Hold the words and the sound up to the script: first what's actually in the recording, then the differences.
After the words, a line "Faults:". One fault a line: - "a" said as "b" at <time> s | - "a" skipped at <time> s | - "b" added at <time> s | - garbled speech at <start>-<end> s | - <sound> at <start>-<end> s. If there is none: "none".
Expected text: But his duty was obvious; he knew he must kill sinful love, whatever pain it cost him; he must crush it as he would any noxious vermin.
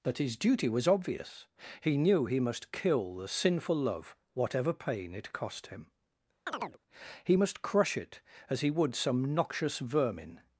But his duty was obvious; he knew he must kill the sinful love, whatever pain it cost him; he must crush it as he would some noxious vermin.
Faults:
- "the" added at 3.1 s
- chirp at 6.5-6.8 s
- "any" said as "some" at 9.0 s